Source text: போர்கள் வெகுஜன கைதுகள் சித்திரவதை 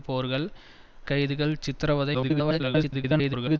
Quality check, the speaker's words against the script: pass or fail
fail